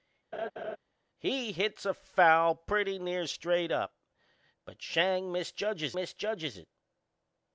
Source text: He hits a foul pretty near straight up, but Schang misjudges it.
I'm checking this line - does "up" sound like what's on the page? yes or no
yes